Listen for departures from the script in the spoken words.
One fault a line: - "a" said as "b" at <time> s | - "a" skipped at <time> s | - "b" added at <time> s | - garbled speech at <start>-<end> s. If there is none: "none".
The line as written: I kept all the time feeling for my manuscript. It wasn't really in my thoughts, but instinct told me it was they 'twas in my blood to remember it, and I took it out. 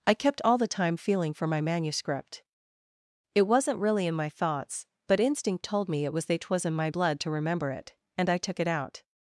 none